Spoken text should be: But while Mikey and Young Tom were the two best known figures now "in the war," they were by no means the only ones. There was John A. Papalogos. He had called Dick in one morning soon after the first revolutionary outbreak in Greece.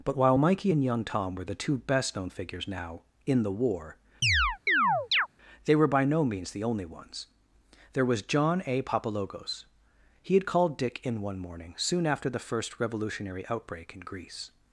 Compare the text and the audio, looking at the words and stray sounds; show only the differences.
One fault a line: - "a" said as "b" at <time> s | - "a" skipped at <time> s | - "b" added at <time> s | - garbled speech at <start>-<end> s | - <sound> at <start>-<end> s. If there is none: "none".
- chirp at 4.2-5.3 s